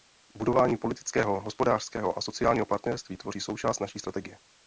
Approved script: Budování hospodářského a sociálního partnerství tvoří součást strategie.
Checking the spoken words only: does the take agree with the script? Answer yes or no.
no